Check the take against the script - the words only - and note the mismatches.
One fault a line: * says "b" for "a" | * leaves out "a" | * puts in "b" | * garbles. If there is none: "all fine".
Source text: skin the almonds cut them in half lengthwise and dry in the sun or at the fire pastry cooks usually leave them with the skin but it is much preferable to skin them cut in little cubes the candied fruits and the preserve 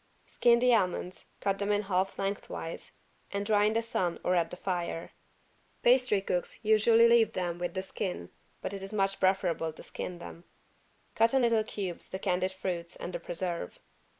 all fine